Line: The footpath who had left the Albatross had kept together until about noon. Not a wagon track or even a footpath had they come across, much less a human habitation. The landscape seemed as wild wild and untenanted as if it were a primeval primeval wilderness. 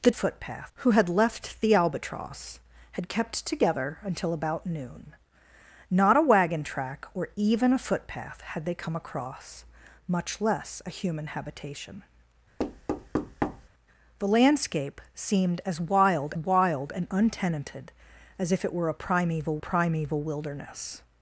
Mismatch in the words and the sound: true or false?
true